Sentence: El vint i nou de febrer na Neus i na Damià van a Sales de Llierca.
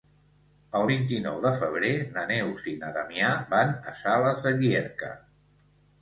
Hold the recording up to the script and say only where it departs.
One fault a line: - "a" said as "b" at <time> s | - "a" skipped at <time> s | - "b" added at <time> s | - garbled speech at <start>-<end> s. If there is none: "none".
none